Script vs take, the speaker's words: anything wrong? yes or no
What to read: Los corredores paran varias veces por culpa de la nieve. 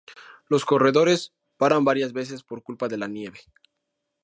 no